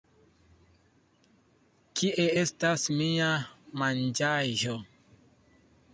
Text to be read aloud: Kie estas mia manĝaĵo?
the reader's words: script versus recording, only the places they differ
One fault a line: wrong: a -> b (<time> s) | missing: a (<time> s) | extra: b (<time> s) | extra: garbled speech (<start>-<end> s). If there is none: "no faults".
no faults